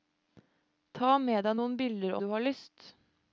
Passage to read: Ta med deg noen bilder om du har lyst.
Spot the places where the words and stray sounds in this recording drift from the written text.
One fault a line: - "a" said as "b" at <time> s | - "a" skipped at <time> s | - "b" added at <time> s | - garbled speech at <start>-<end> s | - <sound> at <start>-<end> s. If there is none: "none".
- "om" skipped at 2.1 s